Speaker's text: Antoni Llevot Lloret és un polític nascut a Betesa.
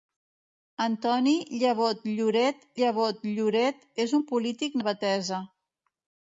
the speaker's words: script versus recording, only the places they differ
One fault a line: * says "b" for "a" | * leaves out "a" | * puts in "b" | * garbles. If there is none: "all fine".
* puts in "Llevot Lloret"
* leaves out "nascut"